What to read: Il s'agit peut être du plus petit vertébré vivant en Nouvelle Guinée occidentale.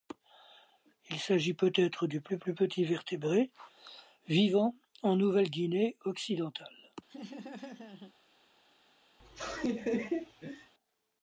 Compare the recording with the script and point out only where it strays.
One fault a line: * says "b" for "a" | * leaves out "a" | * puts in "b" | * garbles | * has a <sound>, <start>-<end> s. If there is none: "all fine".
* puts in "plus"
* has a laugh, 7.1-8.1 s
* has a laugh, 9.2-10.7 s